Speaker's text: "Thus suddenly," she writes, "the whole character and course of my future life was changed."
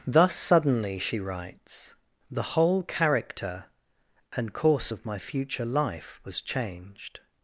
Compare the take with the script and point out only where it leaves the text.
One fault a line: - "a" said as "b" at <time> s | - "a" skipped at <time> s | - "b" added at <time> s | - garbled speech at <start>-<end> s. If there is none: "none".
none